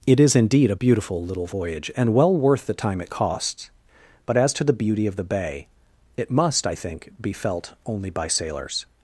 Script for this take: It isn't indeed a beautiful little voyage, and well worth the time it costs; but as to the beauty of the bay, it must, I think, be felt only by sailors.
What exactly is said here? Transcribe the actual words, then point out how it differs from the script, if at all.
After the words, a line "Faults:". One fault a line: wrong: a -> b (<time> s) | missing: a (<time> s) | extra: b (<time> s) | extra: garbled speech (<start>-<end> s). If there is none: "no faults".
It is indeed a beautiful little voyage, and well worth the time it costs; but as to the beauty of the bay, it must, I think, be felt only by sailors.
Faults:
wrong: isn't -> is (0.2 s)